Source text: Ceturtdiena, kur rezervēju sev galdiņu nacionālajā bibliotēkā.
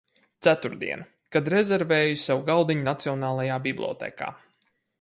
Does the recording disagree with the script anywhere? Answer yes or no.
yes